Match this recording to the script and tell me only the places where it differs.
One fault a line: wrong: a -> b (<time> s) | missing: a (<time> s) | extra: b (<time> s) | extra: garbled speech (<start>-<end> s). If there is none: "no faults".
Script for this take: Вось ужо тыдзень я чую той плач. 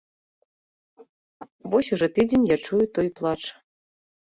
no faults